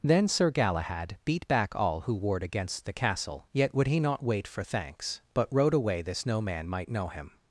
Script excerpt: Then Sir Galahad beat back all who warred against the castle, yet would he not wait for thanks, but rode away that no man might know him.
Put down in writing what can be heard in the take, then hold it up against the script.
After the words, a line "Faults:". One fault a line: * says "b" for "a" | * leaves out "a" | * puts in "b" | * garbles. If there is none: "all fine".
Then Sir Galahad beat back all who warred against the castle, yet would he not wait for thanks, but rode away this no man might know him.
Faults:
* says "this" for "that"